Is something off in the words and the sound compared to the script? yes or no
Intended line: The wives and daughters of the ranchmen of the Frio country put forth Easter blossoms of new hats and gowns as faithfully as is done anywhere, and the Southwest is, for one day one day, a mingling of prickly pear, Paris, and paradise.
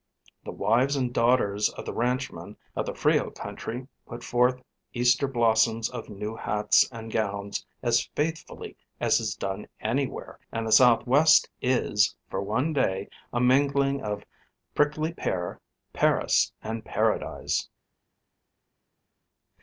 yes